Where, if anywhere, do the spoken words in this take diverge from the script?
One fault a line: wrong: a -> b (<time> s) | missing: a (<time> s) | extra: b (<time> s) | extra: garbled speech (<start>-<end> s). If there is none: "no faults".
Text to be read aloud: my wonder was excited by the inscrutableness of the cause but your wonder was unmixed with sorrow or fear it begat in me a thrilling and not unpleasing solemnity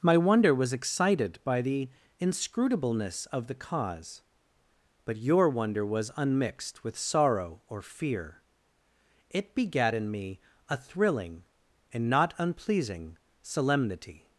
no faults